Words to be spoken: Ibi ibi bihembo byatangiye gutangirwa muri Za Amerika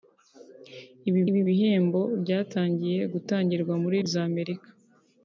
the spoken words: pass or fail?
pass